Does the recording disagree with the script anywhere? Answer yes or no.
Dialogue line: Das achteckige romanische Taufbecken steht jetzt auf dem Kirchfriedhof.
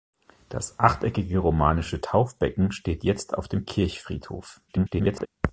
yes